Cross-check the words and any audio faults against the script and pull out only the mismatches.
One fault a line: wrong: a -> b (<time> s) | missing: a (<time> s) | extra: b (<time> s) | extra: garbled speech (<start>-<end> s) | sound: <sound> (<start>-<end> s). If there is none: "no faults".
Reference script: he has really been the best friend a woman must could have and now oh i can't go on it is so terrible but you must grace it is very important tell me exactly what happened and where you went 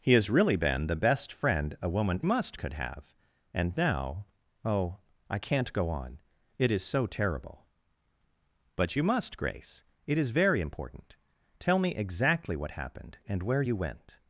no faults